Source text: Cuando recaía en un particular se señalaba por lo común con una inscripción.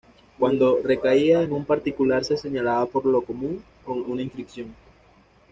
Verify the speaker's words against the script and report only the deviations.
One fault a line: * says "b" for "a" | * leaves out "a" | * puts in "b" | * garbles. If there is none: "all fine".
all fine